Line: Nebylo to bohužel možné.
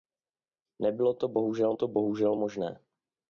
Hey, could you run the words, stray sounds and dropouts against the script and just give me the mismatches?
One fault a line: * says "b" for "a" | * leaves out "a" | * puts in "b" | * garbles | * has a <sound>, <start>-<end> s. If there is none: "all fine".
* puts in "to bohužel"